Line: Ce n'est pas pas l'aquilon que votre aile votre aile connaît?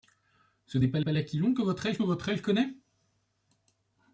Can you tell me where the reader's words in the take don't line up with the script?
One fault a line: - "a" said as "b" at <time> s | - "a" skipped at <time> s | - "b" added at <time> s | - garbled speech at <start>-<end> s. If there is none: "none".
none